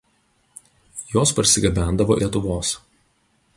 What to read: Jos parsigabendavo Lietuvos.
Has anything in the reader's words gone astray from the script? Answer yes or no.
no